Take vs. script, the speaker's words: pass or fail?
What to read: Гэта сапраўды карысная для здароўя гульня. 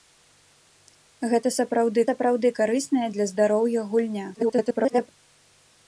fail